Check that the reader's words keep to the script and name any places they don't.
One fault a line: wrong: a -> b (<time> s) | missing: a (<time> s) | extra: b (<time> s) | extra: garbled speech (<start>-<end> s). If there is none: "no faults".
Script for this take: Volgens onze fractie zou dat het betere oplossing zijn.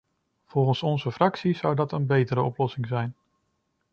wrong: het -> een (1.9 s)